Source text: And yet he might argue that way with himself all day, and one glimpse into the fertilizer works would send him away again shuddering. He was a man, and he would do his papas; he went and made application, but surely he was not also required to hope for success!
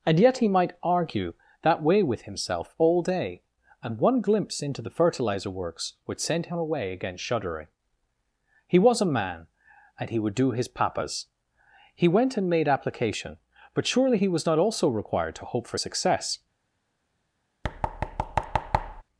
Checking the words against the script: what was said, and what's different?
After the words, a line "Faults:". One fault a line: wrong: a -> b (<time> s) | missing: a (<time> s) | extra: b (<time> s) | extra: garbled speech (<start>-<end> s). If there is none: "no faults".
And yet he might argue that way with himself all day, and one glimpse into the fertilizer works would send him away again shuddering. He was a man, and he would do his papas; he went and made application, but surely he was not also required to hope for success!
Faults:
no faults